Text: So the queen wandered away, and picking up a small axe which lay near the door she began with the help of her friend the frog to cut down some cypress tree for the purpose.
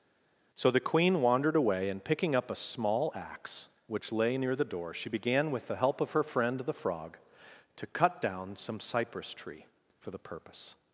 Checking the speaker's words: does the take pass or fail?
pass